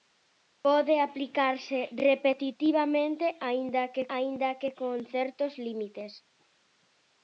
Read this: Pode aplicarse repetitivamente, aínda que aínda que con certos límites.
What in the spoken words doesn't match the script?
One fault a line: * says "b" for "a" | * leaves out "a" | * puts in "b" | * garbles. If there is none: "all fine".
all fine